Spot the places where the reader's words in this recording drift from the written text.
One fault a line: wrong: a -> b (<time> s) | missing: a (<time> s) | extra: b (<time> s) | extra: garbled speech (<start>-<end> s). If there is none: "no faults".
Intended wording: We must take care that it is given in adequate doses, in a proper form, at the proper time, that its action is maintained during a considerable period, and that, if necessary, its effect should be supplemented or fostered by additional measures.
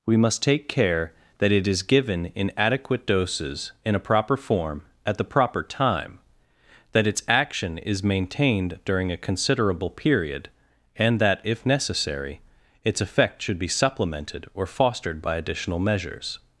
no faults